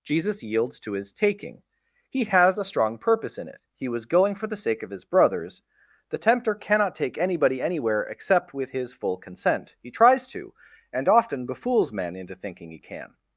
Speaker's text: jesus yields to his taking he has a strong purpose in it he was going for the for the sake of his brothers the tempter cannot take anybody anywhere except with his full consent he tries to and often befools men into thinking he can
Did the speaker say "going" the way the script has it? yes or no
yes